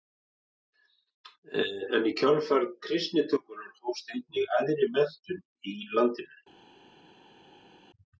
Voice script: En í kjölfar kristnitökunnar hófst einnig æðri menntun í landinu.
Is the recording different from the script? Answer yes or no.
no